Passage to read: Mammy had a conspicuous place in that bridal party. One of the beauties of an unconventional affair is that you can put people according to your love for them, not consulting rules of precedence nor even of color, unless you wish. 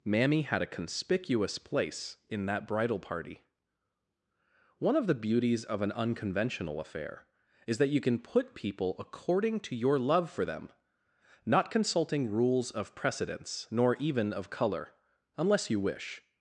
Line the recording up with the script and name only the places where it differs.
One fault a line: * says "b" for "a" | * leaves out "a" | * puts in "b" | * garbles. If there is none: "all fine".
all fine